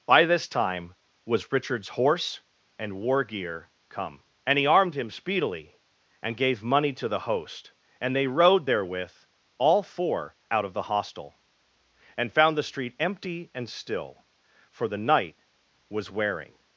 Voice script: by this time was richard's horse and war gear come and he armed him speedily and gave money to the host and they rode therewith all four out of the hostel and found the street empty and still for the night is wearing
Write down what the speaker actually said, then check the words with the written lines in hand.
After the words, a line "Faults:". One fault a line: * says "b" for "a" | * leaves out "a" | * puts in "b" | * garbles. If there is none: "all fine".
by this time was richard's horse and war gear come and he armed him speedily and gave money to the host and they rode therewith all four out of the hostel and found the street empty and still for the night was wearing
Faults:
* says "was" for "is"